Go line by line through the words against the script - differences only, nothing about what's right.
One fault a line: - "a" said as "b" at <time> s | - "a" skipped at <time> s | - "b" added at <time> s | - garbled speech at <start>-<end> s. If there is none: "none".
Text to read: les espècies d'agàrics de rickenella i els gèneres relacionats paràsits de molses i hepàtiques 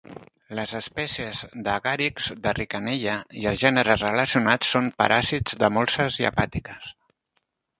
- "són" added at 4.8 s